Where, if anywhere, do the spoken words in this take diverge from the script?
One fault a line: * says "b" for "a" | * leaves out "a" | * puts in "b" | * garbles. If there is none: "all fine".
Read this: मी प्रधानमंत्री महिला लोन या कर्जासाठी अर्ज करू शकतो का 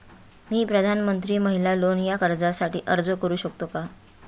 all fine